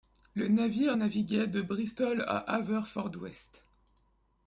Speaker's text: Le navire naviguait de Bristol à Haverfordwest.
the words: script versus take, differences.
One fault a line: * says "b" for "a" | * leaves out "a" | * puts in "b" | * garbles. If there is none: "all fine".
all fine